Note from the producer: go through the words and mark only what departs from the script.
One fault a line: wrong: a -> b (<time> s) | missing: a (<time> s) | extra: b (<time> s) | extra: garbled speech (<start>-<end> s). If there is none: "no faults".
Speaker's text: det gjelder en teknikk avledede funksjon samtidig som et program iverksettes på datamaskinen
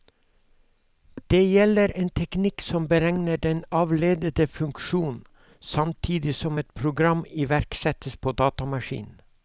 extra: som beregner den (2.7 s)